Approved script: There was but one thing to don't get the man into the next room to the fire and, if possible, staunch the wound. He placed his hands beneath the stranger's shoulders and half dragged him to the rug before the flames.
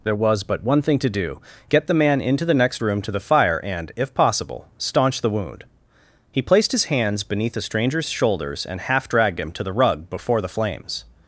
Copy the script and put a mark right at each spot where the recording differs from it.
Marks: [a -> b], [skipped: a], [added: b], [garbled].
There was but one thing to [don't -> do] get the man into the next room to the fire and, if possible, staunch the wound. He placed his hands beneath the stranger's shoulders and half dragged him to the rug before the flames.